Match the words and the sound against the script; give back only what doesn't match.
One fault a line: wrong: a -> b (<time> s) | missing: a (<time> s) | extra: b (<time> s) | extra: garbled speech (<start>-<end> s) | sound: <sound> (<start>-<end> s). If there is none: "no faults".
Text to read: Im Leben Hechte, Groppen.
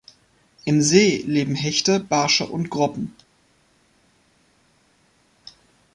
extra: See (0.8 s)
extra: Barsche und (2.0 s)